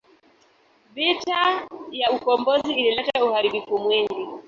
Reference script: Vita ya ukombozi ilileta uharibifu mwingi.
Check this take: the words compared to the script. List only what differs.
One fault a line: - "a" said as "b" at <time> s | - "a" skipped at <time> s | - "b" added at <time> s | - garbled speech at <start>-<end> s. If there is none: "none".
none